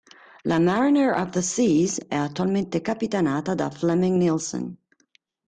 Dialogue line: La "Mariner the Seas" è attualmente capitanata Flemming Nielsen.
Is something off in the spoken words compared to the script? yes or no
yes